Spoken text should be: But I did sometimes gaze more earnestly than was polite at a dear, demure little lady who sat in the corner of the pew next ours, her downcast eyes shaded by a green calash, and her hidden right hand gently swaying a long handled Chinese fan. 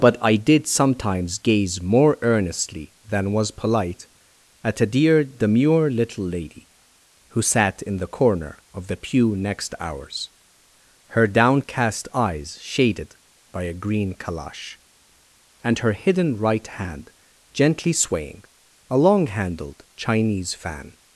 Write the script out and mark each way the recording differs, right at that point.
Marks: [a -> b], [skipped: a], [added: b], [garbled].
But I did sometimes gaze more earnestly than was polite at a dear, demure little lady who sat in the corner of the pew next ours, her downcast eyes shaded by a green calash, and her hidden right hand gently swaying a long handled Chinese fan.